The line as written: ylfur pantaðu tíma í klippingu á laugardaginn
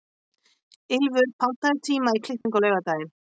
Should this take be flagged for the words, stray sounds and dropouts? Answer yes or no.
yes